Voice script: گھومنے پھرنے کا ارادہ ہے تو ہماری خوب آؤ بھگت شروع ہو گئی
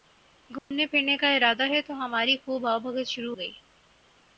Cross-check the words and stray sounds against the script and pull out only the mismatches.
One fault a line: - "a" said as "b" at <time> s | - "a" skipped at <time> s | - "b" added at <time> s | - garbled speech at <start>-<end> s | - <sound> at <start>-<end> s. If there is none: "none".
- dropout at 0.6-0.7 s
- "ہو" skipped at 3.4 s